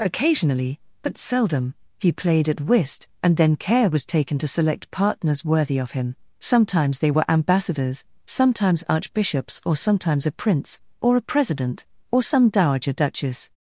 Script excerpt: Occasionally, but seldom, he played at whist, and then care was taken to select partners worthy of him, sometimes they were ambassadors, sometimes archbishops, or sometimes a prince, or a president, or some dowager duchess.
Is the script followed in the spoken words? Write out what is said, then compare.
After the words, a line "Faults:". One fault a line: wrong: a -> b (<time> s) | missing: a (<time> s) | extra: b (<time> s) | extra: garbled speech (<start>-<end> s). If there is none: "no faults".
Occasionally, but seldom, he played at whist, and then care was taken to select partners worthy of him, sometimes they were ambassadors, sometimes archbishops, or sometimes a prince, or a president, or some dowager duchess.
Faults:
no faults